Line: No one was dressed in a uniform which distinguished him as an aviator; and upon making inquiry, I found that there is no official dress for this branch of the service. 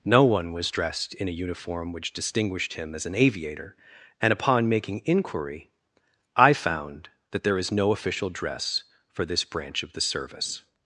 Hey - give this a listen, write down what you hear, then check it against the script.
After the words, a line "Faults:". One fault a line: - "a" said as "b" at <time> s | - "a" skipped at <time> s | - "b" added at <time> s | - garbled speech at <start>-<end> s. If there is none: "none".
No one was dressed in a uniform which distinguished him as an aviator; and upon making inquiry, I found that there is no official dress for this branch of the service.
Faults:
none